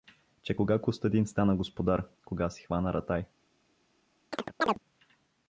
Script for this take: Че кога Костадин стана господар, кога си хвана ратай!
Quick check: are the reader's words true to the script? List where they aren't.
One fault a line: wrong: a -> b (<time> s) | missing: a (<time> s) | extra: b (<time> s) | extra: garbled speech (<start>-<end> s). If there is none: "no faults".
no faults